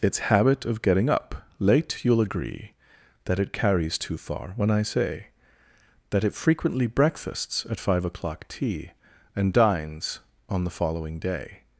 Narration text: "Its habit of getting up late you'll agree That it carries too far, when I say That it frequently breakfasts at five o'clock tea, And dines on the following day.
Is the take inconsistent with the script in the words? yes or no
no